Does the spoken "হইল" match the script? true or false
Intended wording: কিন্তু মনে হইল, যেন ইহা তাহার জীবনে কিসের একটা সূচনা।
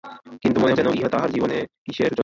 false